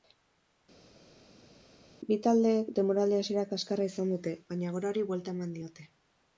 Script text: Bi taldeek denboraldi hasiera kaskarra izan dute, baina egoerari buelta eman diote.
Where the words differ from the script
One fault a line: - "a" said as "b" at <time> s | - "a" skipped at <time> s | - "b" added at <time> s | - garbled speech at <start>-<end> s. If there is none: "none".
none